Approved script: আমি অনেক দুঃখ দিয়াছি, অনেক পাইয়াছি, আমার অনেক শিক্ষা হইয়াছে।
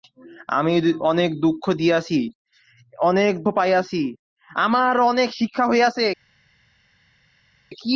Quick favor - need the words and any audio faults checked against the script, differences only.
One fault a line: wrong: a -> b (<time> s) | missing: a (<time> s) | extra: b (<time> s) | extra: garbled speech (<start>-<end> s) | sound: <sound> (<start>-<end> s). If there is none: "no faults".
no faults